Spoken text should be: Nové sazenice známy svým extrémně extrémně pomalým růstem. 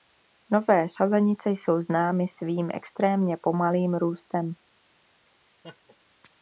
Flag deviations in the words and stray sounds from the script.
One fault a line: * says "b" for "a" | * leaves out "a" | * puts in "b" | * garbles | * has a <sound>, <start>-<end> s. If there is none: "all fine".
* puts in "jsou"
* leaves out "extrémně"
* has a laugh, 5.6-6.0 s